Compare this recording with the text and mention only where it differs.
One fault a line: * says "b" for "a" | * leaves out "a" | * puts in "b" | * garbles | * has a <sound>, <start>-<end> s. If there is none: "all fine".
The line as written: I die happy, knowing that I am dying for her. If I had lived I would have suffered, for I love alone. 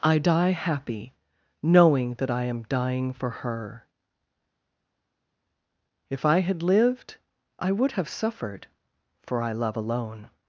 all fine